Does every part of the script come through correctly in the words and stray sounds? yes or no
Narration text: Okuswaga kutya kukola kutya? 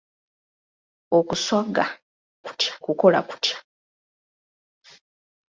yes